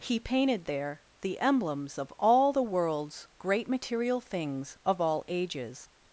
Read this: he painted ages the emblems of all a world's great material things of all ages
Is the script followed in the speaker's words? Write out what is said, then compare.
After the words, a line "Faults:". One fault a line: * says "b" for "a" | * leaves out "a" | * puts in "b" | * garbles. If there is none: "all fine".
he painted there the emblems of all the world's great material things of all ages
Faults:
* says "there" for "ages"
* says "the" for "a"